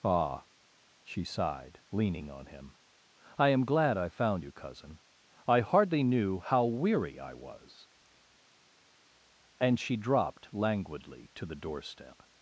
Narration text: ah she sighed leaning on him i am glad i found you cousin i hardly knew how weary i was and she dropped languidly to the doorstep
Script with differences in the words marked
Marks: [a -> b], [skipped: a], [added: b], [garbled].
ah she sighed leaning on him i am glad i found you cousin i hardly knew how weary i was and she dropped languidly to the doorstep